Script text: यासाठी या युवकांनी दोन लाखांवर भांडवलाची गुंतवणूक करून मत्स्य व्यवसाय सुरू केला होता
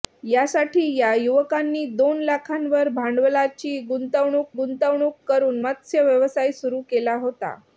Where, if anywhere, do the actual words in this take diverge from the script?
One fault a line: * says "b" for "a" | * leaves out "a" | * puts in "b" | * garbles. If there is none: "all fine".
* puts in "गुंतवणूक"